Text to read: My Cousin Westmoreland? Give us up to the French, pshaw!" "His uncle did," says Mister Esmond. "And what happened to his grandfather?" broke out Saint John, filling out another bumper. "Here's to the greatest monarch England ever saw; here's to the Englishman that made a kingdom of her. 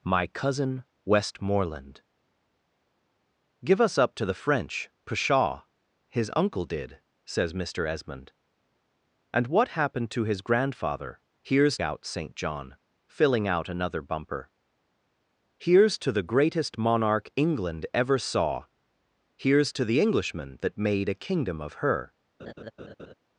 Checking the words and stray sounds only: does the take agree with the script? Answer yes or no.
no